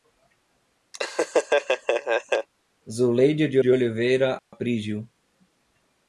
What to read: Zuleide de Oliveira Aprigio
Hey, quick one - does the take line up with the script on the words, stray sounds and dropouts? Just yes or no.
no